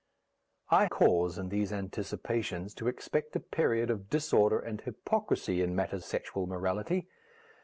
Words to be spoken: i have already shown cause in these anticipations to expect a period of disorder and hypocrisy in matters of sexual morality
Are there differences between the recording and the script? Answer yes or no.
yes